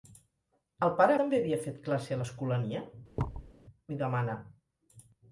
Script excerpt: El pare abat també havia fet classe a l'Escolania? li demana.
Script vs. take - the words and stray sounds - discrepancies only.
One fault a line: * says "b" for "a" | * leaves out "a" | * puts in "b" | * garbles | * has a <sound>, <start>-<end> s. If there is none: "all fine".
* leaves out "abat"
* has a thud, 3.2-3.5 s